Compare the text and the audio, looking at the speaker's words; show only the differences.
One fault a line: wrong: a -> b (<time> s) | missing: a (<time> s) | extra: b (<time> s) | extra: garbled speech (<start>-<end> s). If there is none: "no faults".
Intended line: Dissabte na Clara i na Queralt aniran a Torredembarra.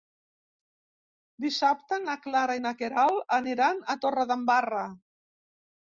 no faults